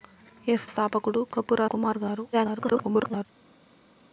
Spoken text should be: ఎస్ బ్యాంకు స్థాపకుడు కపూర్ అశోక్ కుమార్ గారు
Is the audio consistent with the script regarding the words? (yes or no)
no